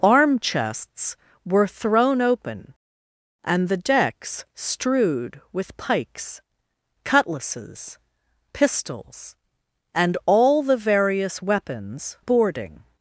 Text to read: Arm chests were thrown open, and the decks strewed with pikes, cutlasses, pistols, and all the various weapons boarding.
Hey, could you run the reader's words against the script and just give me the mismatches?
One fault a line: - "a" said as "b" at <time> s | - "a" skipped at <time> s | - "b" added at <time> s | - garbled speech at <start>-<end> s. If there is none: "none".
none